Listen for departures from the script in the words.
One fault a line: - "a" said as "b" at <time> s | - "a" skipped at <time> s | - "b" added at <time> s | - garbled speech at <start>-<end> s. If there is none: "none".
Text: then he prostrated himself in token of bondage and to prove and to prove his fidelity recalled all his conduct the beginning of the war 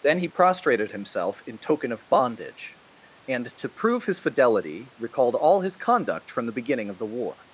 - "and to prove" skipped at 4.0 s
- "from" added at 6.3 s